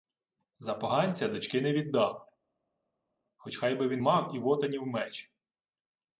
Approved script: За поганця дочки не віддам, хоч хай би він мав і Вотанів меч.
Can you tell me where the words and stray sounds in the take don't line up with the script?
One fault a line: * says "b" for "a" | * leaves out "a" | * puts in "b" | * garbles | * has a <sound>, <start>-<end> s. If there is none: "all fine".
all fine